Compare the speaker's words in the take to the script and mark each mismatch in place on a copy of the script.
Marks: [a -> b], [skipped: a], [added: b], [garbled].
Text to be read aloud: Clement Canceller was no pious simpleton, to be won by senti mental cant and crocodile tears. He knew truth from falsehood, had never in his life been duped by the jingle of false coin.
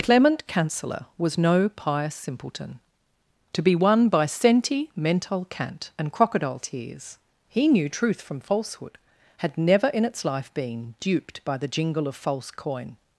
Clement Canceller was no pious simpleton, to be won by senti mental cant and crocodile tears. He knew truth from falsehood, had never in [his -> its] life been duped by the jingle of false coin.